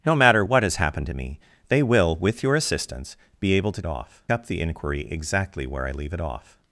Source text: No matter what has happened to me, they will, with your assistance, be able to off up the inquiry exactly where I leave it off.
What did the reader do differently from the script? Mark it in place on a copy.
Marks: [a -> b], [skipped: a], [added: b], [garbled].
No matter what has happened to me, they will, with your assistance, be able to off up the inquiry exactly where I leave it off.